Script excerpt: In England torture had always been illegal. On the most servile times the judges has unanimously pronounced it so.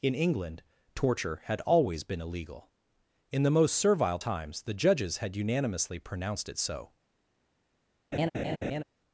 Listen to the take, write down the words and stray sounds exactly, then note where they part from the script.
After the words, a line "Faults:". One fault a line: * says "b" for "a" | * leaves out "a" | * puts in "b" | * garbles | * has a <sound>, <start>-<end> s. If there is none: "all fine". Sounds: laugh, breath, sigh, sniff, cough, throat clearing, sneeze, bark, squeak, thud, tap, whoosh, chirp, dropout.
In England torture had always been illegal. In the most servile times the judges had unanimously pronounced it so.
Faults:
* says "In" for "On"
* says "had" for "has"
* has a laugh, 8.1-8.8 s